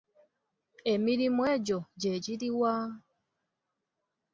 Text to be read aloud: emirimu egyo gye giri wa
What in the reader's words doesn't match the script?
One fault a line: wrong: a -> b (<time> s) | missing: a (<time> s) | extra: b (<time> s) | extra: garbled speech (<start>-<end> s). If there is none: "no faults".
no faults